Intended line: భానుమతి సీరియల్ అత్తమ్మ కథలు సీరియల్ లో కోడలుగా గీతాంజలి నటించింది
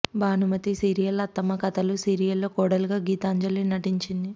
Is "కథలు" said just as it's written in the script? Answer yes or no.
yes